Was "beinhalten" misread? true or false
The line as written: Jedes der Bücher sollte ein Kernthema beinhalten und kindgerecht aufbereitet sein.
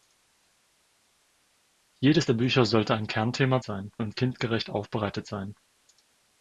true